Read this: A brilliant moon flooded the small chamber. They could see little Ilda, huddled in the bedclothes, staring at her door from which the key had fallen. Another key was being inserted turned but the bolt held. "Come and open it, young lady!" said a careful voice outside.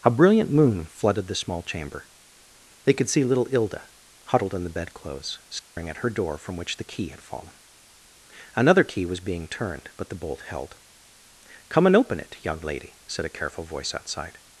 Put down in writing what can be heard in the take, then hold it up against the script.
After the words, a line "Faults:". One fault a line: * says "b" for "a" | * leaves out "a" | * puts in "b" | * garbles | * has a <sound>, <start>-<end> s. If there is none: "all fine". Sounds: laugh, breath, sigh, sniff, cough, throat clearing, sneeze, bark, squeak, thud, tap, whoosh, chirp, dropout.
A brilliant moon flooded the small chamber. They could see little Ilda, huddled in the bedclothes, staring at her door from which the key had fallen. Another key was being turned but the bolt held. "Come and open it, young lady!" said a careful voice outside.
Faults:
* has a dropout, 5.6-5.8 s
* leaves out "inserted"